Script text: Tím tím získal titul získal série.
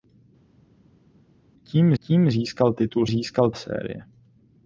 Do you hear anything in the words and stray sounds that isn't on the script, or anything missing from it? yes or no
no